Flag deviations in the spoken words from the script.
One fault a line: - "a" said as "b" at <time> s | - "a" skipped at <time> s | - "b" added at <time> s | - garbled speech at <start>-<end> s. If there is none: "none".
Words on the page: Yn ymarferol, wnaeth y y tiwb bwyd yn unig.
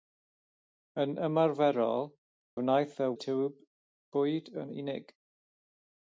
none